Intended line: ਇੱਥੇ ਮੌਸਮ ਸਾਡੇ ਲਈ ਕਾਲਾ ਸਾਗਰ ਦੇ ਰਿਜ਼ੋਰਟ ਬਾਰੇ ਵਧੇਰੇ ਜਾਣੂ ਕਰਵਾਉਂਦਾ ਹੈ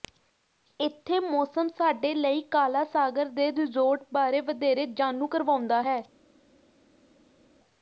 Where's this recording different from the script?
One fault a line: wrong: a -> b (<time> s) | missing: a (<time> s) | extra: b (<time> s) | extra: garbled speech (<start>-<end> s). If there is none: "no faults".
no faults